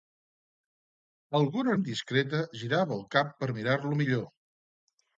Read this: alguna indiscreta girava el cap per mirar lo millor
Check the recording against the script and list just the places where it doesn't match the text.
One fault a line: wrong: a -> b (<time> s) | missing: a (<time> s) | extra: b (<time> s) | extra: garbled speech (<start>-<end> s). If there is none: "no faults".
no faults